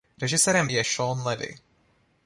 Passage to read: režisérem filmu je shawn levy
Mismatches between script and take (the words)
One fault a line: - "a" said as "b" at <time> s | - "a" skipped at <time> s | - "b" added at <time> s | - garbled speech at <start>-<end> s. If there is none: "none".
- "filmu" skipped at 0.7 s